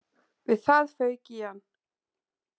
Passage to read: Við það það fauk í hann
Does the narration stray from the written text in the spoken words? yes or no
yes